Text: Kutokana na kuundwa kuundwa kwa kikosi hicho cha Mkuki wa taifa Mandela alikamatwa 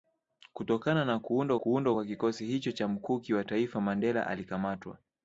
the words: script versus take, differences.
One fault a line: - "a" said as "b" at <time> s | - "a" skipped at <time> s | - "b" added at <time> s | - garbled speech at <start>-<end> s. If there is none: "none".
none